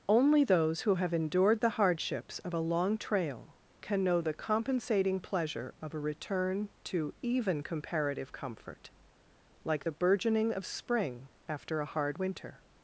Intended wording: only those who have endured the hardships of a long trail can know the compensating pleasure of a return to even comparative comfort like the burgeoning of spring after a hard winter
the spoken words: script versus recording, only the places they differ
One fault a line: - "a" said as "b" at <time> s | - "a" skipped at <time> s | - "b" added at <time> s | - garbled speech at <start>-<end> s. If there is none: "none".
none